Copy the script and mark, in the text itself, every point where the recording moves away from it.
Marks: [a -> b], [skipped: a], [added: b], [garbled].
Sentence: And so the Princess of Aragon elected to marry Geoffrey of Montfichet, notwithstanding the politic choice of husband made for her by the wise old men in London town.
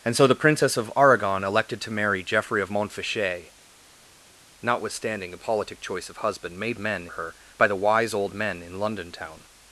And so the Princess of Aragon elected to marry Geoffrey of Montfichet, notwithstanding the politic choice of husband made [for -> men] her by the wise old men in London town.